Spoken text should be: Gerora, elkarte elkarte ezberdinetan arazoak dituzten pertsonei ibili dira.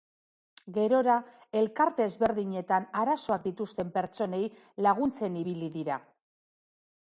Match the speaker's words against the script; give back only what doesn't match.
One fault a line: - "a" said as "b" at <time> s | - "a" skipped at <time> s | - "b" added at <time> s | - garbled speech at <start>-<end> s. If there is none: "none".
- "elkarte" skipped at 2.1 s
- "laguntzen" added at 4.9 s